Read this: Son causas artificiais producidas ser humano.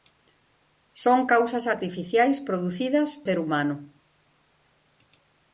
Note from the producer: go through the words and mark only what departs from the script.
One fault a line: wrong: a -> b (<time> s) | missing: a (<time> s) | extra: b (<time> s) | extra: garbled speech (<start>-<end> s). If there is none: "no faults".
no faults